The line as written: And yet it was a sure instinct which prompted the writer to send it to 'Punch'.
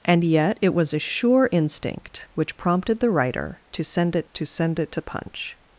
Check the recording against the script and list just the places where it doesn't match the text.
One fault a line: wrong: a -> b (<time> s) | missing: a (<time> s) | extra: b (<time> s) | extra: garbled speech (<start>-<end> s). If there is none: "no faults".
extra: send it to (4.4 s)